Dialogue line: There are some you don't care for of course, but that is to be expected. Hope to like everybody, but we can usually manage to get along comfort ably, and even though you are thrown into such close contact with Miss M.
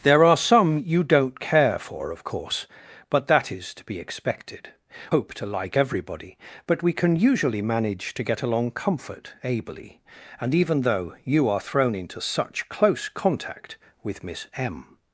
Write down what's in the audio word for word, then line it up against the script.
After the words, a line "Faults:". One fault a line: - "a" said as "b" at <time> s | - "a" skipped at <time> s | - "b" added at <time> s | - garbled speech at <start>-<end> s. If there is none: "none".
There are some you don't care for of course, but that is to be expected. Hope to like everybody, but we can usually manage to get along comfort ably, and even though you are thrown into such close contact with Miss M.
Faults:
none